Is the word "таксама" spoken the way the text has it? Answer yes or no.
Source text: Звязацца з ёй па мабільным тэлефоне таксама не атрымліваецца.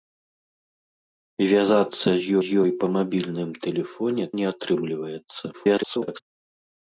no